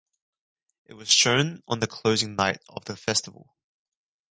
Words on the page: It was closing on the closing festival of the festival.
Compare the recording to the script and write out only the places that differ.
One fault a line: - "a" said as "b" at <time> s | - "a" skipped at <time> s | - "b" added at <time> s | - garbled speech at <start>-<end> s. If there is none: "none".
- "closing" said as "shown" at 1.1 s
- "festival" said as "night" at 2.4 s